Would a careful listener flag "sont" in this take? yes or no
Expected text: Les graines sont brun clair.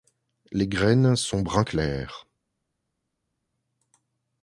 no